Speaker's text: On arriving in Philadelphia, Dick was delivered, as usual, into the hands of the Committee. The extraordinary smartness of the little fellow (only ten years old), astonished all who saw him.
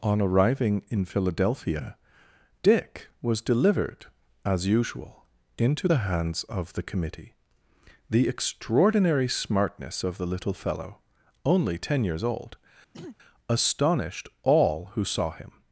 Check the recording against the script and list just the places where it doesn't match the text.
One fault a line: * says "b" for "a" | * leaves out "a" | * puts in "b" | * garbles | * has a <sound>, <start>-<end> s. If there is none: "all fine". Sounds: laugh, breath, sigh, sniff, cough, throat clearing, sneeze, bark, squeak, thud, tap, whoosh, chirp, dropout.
* has a throat clearing, 12.9-13.2 s